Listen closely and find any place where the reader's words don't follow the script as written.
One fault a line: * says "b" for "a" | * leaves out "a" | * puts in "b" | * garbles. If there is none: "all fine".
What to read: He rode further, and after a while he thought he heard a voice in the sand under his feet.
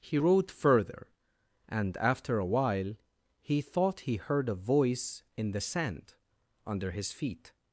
all fine